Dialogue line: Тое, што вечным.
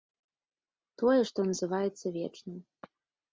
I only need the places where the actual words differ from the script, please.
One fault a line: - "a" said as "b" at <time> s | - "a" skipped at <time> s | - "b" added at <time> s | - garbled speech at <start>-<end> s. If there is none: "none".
- "называецца" added at 1.5 s